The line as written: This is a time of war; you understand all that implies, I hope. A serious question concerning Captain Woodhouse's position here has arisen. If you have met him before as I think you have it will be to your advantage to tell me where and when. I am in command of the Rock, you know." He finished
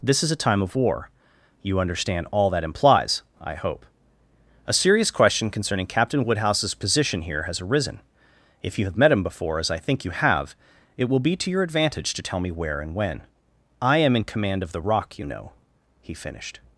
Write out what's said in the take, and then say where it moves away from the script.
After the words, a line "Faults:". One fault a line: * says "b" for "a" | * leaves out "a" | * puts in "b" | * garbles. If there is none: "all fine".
This is a time of war; you understand all that implies, I hope. A serious question concerning Captain Woodhouse's position here has arisen. If you have met him before as I think you have it will be to your advantage to tell me where and when. I am in command of the Rock, you know." He finished
Faults:
all fine